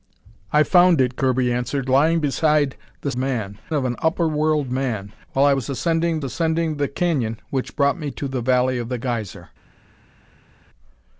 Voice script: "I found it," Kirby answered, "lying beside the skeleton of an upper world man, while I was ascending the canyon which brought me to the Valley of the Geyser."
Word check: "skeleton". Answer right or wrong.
wrong